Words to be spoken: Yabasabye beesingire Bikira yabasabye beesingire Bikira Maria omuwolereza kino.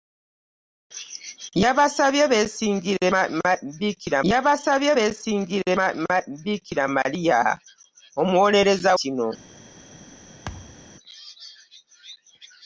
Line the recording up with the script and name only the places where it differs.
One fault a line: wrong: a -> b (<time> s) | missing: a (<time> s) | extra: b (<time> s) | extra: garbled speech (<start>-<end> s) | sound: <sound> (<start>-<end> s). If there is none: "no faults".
sound: thud (10.5-10.9 s)